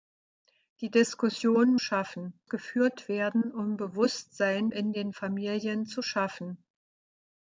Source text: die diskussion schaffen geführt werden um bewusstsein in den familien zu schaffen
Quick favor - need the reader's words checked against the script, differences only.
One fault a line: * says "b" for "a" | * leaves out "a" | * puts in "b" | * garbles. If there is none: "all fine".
all fine